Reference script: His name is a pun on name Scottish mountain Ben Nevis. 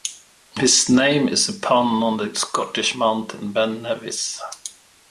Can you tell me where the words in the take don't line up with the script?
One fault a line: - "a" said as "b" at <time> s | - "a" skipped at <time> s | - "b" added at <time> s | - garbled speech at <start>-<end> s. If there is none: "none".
- "name" said as "the" at 2.2 s